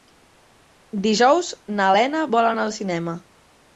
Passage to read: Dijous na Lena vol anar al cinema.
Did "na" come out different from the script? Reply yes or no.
no